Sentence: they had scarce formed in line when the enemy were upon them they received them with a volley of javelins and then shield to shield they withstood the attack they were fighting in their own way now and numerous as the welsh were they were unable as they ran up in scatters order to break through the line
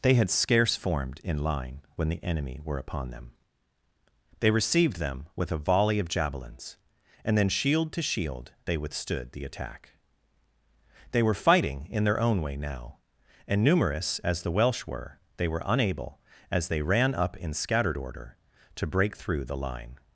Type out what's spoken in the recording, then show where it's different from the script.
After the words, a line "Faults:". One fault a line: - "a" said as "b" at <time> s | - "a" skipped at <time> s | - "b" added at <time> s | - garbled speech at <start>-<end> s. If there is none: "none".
they had scarce formed in line when the enemy were upon them they received them with a volley of javelins and then shield to shield they withstood the attack they were fighting in their own way now and numerous as the welsh were they were unable as they ran up in scattered order to break through the line
Faults:
- "scatters" said as "scattered" at 17.5 s